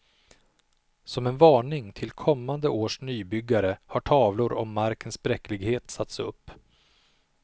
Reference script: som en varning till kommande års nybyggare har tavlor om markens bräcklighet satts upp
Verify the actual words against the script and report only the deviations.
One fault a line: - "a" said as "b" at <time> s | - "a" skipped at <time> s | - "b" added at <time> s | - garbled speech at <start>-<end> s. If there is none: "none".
none